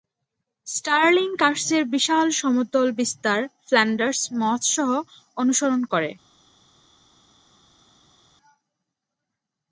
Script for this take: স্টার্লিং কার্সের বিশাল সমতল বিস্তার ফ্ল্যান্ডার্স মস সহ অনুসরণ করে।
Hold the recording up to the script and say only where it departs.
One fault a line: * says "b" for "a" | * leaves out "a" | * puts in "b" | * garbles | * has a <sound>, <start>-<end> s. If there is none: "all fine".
all fine